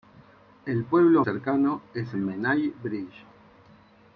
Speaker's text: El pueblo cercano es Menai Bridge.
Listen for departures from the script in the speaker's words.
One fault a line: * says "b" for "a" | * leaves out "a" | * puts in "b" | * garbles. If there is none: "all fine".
all fine